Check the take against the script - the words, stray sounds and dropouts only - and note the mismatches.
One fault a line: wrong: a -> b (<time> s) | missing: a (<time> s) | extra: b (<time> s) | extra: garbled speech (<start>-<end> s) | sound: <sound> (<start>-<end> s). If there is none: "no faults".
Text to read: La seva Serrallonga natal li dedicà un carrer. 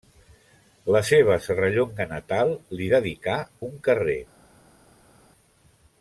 no faults